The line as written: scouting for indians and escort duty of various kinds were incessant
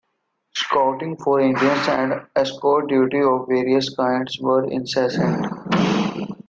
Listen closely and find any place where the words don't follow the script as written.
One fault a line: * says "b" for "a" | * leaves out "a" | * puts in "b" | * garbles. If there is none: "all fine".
all fine